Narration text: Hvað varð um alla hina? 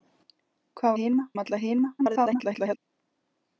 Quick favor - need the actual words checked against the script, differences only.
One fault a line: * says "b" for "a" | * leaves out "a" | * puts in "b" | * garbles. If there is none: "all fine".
* says "hina" for "varð"
* garbles